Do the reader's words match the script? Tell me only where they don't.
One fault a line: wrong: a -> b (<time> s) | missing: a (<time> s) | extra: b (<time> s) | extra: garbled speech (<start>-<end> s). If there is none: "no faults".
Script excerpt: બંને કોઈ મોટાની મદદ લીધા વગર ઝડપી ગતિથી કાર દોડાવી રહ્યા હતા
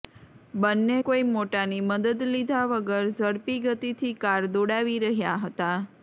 no faults